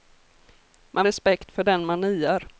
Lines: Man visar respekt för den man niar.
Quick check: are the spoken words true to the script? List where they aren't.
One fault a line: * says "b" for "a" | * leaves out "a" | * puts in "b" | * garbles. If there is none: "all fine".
* leaves out "visar"